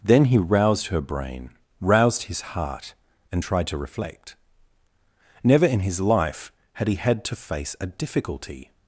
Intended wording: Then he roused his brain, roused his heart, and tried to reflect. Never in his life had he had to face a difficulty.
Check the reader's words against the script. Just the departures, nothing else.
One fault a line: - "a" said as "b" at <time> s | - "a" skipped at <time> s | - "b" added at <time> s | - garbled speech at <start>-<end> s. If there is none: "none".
- "his" said as "her" at 0.9 s